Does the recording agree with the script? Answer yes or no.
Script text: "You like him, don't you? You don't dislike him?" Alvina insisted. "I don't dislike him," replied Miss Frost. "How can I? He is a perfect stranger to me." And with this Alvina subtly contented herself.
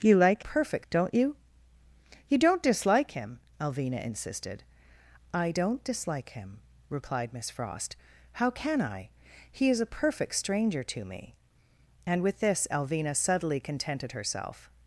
no